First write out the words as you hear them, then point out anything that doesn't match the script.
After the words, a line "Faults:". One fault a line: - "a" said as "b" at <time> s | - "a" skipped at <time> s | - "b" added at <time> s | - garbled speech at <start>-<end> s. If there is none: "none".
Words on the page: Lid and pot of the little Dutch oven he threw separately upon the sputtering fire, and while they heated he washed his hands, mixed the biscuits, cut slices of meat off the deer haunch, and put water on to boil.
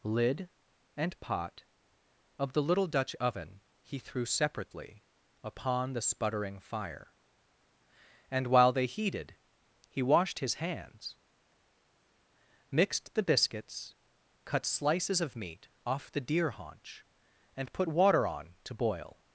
Lid and pot of the little Dutch oven he threw separately upon the sputtering fire, and while they heated he washed his hands, mixed the biscuits, cut slices of meat off the deer haunch, and put water on to boil.
Faults:
none